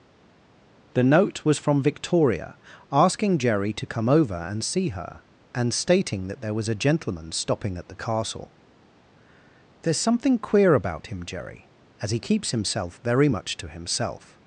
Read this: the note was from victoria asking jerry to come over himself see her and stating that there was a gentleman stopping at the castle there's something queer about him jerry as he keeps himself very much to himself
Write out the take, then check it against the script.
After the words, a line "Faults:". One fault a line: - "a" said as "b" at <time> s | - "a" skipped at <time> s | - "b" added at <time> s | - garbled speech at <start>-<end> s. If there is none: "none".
the note was from victoria asking jerry to come over and see her and stating that there was a gentleman stopping at the castle there's something queer about him jerry as he keeps himself very much to himself
Faults:
- "himself" said as "and" at 4.4 s